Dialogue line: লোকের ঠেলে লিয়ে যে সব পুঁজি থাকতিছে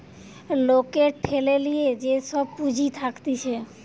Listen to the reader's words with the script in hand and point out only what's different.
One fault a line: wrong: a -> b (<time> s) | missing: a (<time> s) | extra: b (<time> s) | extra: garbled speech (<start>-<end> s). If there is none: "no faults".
no faults